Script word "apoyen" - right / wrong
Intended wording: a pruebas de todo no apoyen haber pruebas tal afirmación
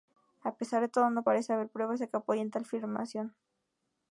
wrong